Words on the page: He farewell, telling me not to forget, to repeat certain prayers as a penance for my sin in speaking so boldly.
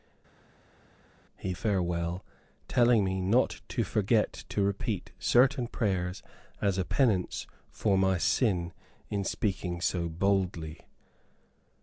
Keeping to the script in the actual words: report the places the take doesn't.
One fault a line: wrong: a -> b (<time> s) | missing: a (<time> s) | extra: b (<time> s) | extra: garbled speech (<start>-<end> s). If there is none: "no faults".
no faults